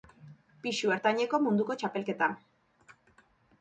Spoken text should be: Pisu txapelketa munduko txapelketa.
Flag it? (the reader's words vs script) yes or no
yes